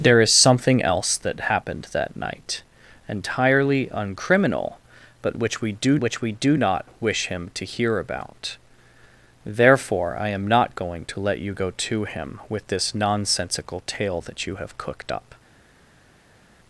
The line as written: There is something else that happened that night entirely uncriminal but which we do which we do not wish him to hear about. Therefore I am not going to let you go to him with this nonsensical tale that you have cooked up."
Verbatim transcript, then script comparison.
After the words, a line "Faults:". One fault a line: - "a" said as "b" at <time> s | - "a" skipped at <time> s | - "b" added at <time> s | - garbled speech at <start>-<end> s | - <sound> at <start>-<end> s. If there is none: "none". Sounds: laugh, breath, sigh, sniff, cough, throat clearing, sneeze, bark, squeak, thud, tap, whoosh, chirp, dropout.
There is something else that happened that night entirely uncriminal but which we do which we do not wish him to hear about. Therefore I am not going to let you go to him with this nonsensical tale that you have cooked up."
Faults:
none